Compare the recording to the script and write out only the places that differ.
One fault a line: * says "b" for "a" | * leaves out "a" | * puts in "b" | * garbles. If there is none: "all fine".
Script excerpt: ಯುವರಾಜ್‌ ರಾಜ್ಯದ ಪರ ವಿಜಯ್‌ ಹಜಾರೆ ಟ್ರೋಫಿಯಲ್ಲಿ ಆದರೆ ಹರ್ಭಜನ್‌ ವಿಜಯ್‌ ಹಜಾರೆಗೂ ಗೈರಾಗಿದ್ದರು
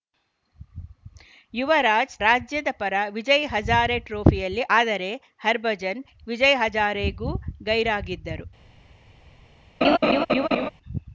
all fine